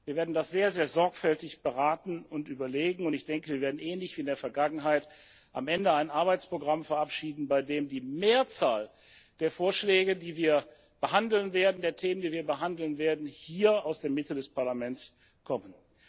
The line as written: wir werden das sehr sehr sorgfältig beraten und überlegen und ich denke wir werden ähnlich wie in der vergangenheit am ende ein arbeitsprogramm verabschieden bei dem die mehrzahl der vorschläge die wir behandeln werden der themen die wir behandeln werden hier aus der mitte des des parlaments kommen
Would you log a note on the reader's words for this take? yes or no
yes